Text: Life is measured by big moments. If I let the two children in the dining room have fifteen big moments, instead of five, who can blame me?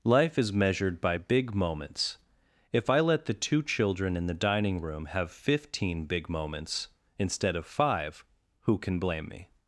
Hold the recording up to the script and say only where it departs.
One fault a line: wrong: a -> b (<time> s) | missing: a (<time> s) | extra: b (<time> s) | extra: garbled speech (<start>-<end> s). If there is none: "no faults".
no faults